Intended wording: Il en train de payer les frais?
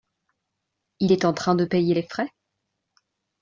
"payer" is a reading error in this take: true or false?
false